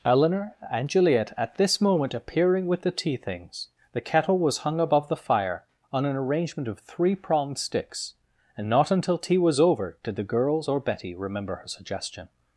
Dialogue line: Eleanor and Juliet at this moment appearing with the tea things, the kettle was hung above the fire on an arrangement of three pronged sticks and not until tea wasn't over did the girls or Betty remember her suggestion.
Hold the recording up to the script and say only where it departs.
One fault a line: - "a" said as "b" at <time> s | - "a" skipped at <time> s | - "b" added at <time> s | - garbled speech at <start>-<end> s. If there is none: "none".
- "wasn't" said as "was" at 9.4 s